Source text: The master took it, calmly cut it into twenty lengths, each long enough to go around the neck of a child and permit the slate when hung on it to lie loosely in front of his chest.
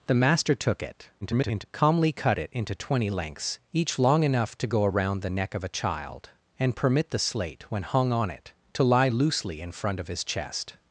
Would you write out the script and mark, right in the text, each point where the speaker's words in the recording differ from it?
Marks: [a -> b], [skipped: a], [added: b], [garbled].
The master took it, [garbled] calmly cut it into twenty lengths, each long enough to go around the neck of a child and permit the slate when hung on it to lie loosely in front of his chest.